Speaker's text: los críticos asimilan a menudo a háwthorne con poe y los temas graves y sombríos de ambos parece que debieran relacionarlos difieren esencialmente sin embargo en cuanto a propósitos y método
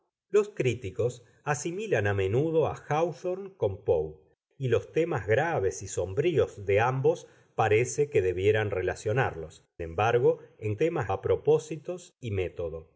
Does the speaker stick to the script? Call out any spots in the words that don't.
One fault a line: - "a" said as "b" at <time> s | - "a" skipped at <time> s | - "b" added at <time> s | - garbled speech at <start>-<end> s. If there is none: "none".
- "difieren esencialmente sin" skipped at 9.7 s
- "cuanto" said as "temas" at 10.8 s